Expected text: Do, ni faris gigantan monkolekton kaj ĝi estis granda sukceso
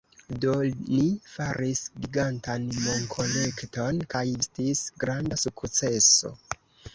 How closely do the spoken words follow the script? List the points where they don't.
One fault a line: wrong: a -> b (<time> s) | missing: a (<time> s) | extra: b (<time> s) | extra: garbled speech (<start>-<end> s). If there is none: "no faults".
missing: ĝi (4.2 s)